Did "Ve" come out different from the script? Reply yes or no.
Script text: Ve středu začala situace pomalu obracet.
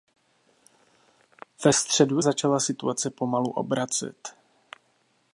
no